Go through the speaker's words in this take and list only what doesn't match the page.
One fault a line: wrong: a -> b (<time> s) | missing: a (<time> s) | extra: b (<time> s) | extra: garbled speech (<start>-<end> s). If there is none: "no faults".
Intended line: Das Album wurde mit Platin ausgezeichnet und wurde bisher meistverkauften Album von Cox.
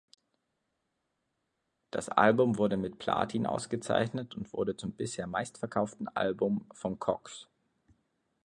extra: zum (4.8 s)